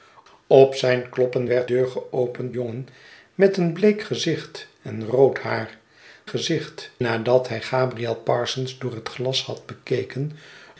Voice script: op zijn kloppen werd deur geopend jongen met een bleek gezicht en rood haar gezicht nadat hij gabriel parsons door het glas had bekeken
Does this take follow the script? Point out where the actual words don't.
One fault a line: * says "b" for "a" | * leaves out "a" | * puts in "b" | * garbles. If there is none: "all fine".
all fine